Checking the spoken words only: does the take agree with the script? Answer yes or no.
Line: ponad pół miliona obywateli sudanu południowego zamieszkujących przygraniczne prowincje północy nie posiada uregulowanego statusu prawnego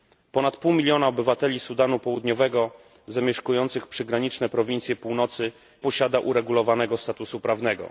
no